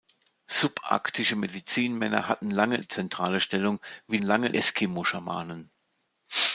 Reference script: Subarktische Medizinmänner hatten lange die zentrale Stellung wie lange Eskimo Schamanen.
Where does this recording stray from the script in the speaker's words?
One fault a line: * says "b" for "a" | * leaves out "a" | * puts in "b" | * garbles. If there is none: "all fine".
all fine